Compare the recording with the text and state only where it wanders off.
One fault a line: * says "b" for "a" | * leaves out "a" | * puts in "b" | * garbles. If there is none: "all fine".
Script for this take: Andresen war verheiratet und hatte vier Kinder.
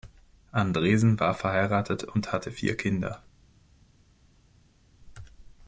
all fine